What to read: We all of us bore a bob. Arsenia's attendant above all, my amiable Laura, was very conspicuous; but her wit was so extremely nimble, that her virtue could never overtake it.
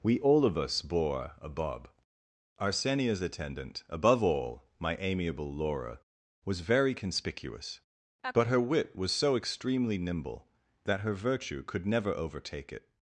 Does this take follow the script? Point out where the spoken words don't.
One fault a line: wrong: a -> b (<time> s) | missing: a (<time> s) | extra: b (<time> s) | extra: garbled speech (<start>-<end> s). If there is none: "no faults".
no faults